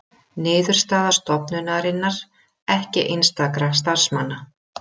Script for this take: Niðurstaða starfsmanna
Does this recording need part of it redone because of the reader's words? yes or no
yes